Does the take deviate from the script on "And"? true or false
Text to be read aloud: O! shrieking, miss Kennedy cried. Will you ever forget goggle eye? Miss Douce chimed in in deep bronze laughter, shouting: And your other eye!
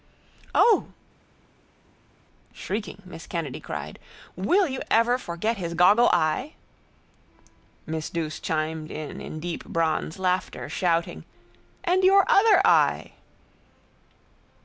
false